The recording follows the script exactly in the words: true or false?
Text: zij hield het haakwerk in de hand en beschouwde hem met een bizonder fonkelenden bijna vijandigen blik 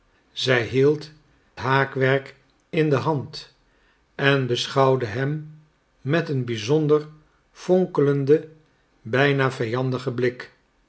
false